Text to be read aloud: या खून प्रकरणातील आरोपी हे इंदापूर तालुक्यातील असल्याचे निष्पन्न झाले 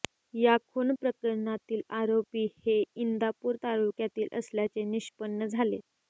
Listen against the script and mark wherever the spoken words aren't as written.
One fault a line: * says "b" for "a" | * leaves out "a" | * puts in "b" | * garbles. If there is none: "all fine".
all fine